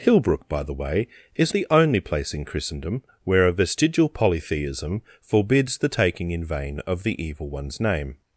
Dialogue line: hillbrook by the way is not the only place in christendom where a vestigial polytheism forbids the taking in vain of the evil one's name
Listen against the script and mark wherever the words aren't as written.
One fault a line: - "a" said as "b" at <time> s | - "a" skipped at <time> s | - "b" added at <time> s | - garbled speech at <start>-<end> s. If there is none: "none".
- "not" skipped at 1.5 s